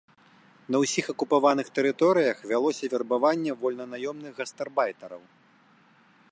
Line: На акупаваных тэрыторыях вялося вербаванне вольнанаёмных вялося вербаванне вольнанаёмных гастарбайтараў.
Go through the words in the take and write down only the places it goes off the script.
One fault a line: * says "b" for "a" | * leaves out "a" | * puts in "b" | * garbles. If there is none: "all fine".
* puts in "ўсіх"
* leaves out "вялося вербаванне вольнанаёмных"